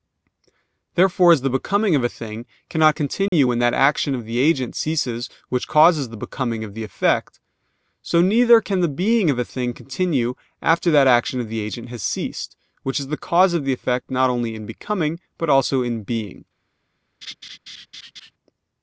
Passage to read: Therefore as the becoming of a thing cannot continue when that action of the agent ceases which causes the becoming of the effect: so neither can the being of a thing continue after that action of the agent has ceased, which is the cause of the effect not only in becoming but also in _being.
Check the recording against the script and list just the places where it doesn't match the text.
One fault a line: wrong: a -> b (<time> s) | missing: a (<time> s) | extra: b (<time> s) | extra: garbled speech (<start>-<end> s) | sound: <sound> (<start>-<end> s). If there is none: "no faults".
sound: dropout (3.3-3.3 s)
sound: laugh (17.2-18.3 s)